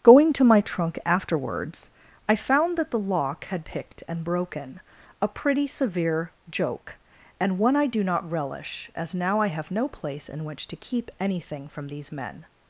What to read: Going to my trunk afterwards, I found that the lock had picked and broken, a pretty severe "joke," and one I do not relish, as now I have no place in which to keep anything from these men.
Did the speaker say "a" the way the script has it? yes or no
yes